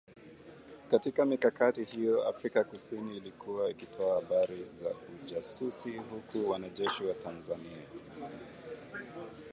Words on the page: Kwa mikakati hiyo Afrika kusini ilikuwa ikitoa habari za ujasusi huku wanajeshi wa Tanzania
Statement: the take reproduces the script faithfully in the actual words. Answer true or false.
false